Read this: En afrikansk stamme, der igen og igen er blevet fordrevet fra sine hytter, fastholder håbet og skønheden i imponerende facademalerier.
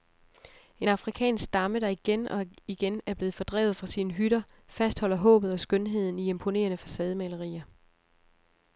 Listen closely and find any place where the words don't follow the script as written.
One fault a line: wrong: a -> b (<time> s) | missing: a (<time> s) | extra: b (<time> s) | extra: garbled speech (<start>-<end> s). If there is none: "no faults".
no faults